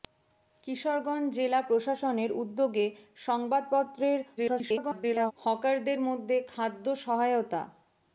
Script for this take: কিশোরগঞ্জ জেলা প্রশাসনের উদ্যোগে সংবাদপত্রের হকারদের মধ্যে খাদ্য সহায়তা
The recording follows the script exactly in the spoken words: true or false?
false